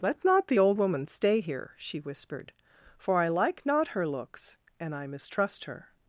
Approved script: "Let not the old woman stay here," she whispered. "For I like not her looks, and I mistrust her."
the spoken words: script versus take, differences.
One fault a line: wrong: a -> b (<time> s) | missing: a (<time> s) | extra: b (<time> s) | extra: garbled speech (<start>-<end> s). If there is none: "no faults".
no faults